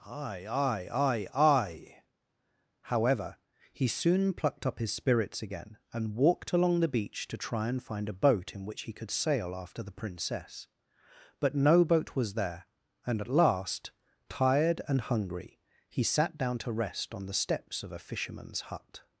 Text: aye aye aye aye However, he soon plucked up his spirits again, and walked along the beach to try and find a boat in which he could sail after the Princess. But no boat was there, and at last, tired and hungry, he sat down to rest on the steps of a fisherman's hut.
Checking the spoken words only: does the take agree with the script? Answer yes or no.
yes